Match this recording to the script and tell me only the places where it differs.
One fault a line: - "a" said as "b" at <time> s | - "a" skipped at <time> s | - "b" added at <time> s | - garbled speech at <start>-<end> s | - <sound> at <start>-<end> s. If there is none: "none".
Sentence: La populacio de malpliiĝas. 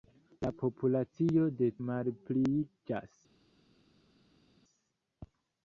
none